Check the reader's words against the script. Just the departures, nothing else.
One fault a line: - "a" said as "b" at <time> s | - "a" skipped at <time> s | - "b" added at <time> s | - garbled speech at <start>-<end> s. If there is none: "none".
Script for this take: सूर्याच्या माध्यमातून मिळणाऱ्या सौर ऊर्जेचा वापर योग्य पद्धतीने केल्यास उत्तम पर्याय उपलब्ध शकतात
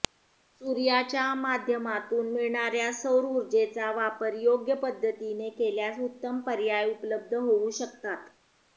- "होऊ" added at 7.3 s